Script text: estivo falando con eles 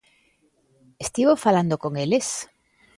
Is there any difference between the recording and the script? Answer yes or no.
no